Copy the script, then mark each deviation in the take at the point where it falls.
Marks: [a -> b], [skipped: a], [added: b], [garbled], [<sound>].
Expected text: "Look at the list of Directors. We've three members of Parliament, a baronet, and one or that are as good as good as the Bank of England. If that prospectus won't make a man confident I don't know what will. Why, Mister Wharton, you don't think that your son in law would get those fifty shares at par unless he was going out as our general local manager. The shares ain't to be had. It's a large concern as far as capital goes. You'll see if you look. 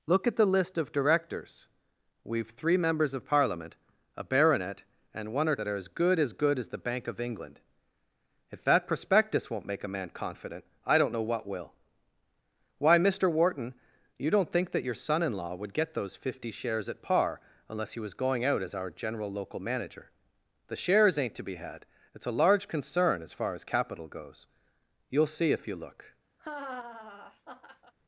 "Look at the list of Directors. We've three members of Parliament, a baronet, and one or that are as good as good as the Bank of England. If that prospectus won't make a man confident I don't know what will. Why, Mister Wharton, you don't think that your son in law would get those fifty shares at par unless he was going out as our general local manager. The shares ain't to be had. It's a large concern as far as capital goes. You'll see if you look. [laugh]